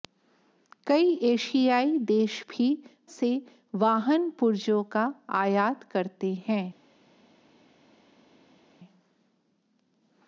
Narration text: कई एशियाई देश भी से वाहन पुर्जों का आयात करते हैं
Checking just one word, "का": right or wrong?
right